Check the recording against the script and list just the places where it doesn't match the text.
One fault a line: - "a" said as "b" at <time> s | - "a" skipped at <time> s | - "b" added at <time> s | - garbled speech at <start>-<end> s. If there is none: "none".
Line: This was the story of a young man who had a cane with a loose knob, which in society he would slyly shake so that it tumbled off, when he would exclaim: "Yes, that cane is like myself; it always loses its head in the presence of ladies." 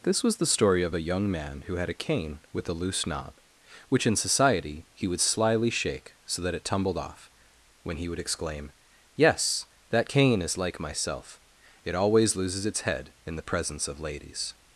none